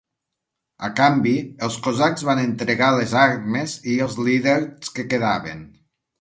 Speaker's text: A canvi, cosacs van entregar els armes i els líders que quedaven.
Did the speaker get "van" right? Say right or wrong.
right